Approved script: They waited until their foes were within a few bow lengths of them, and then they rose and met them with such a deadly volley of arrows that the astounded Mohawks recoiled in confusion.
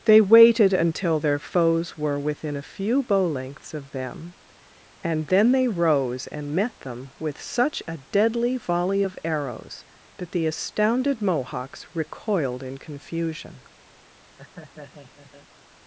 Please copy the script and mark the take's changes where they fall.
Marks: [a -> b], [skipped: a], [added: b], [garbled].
They waited until their foes were within a few bow lengths of them, and then they rose and met them with such a deadly volley of arrows that the astounded Mohawks recoiled in confusion.